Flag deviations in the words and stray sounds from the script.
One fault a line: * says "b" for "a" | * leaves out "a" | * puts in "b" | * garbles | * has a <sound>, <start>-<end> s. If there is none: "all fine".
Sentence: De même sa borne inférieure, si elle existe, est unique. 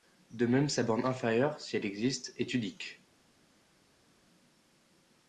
all fine